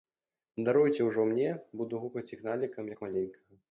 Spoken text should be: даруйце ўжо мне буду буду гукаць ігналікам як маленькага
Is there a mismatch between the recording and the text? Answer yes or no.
yes